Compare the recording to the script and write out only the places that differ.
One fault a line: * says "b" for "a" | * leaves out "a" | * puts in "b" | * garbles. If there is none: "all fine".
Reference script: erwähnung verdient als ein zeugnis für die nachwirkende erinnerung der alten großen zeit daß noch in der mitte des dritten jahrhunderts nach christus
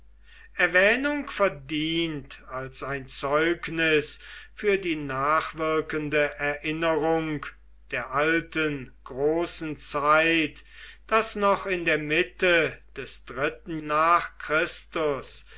* leaves out "jahrhunderts"